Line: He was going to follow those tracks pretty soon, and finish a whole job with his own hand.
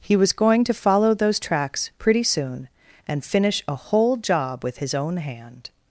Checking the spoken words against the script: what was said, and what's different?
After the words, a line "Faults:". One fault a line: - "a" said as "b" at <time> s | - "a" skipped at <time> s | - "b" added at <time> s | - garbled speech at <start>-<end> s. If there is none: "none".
He was going to follow those tracks pretty soon, and finish a whole job with his own hand.
Faults:
none